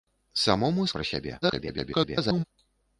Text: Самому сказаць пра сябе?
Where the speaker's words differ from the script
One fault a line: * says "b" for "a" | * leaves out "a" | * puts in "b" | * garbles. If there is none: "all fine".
* leaves out "сказаць"
* garbles